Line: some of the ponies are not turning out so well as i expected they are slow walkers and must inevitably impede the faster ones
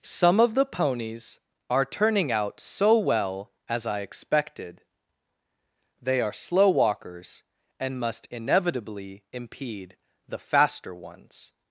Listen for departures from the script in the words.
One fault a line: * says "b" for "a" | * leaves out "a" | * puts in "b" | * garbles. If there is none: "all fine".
* leaves out "not"